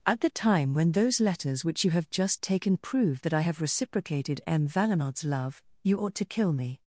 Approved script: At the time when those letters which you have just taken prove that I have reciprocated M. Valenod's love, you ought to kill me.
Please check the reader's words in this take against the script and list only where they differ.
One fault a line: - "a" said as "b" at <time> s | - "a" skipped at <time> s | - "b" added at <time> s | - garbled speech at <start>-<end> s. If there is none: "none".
none